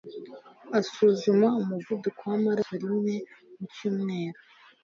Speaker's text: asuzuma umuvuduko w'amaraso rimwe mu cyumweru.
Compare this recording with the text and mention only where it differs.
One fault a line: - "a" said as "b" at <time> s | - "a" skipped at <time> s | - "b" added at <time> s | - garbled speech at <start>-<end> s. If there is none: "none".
none